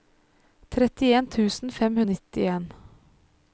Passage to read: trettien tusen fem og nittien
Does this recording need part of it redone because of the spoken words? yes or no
no